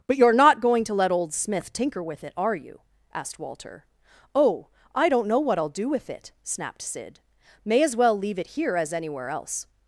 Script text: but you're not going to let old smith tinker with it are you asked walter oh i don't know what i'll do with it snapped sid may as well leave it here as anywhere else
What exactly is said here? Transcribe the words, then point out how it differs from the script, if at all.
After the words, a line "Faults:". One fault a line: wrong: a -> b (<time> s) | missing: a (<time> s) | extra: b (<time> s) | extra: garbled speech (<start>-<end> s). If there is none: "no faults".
but you're not going to let old smith tinker with it are you asked walter oh i don't know what i'll do with it snapped sid may as well leave it here as anywhere else
Faults:
no faults